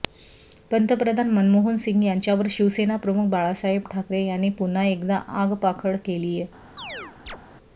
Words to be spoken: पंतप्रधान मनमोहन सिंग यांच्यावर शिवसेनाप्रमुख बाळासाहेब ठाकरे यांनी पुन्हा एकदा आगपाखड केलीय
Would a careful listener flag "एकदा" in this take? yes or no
no